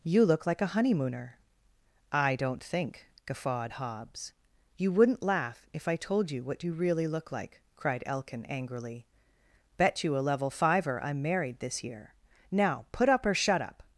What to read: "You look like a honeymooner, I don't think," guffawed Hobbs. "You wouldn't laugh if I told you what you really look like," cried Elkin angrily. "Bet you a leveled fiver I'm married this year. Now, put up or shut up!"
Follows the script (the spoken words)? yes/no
no